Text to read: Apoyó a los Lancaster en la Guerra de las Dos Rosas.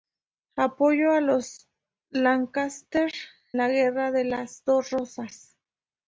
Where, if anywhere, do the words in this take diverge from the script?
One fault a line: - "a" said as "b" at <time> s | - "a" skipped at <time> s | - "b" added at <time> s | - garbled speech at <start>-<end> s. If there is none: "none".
- "en" skipped at 3.1 s